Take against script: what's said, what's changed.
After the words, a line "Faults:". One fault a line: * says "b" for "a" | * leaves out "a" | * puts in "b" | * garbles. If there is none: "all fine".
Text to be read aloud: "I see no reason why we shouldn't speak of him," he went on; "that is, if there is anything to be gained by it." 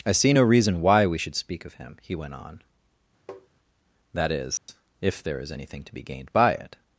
"I see no reason why we should speak of him," he went on; "that is, if there is anything to be gained by it."
Faults:
* says "should" for "shouldn't"